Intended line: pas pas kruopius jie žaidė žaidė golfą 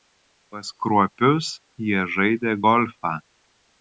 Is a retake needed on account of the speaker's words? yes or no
yes